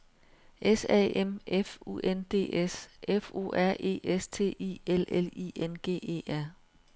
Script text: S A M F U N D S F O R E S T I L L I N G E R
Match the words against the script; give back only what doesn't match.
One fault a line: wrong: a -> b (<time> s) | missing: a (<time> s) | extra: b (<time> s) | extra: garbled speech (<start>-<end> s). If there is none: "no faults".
no faults